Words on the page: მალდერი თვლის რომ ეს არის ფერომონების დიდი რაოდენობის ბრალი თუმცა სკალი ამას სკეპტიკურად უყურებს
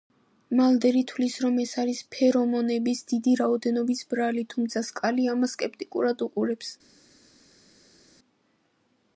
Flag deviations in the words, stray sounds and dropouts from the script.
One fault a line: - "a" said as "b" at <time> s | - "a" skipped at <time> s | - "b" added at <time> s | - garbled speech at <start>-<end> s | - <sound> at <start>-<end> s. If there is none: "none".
none